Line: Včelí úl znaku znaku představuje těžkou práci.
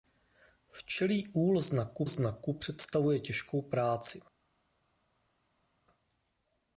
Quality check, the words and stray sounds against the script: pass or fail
pass